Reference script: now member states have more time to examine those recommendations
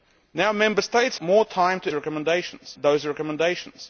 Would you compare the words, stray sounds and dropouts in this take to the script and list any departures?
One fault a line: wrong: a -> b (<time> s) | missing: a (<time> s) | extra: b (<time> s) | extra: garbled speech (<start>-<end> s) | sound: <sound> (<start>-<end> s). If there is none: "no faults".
missing: have (1.2 s)
wrong: examine -> recommendations (1.9 s)